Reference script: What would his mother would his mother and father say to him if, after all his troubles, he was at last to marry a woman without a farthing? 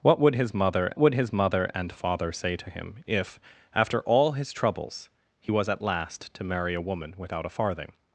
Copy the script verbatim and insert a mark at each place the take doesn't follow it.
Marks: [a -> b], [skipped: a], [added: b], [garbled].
What would his mother would his mother and father say to him if, after all his troubles, he was at last to marry a woman without a farthing?